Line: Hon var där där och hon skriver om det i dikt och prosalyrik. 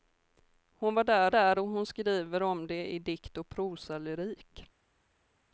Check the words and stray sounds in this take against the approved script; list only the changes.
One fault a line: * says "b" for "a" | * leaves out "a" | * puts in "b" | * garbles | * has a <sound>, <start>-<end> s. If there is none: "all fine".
all fine